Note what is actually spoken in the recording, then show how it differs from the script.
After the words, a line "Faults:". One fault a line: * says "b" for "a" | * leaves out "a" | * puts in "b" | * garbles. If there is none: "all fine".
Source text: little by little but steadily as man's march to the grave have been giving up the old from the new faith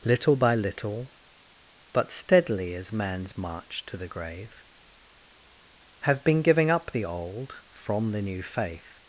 little by little but steadily as man's march to the grave have been giving up the old from the new faith
Faults:
all fine